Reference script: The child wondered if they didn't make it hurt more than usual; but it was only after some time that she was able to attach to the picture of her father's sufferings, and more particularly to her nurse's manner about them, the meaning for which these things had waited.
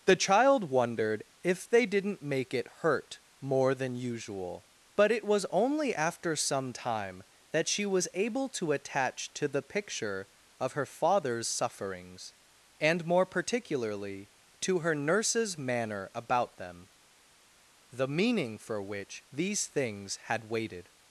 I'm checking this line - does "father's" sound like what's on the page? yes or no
yes